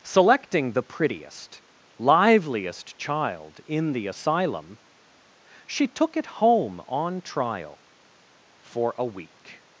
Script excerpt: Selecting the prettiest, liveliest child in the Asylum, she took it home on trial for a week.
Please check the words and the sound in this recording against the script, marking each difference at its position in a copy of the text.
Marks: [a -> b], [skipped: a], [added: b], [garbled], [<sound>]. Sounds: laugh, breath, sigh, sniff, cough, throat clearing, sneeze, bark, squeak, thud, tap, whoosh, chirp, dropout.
Selecting the prettiest, liveliest child in the Asylum, she took it home on trial for a week.